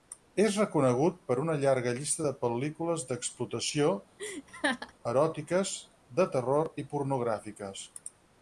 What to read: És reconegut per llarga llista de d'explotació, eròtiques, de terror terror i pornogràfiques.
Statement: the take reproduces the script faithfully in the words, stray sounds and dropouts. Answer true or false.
false